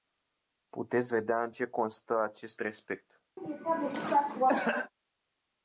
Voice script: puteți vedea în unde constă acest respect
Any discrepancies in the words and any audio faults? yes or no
yes